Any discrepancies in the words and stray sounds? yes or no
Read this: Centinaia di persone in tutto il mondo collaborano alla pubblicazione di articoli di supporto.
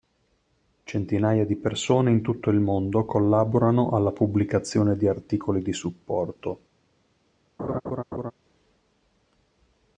yes